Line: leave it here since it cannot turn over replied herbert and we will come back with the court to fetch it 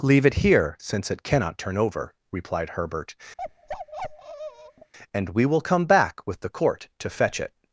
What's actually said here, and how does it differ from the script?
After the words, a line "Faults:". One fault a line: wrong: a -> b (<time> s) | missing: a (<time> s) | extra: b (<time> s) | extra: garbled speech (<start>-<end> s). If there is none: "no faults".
leave it here since it cannot turn over replied herbert and we will come back with the court to fetch it
Faults:
no faults